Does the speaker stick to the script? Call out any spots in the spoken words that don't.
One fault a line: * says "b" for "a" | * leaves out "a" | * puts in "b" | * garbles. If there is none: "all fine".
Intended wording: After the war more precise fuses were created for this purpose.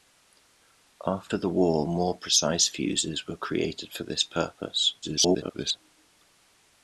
* garbles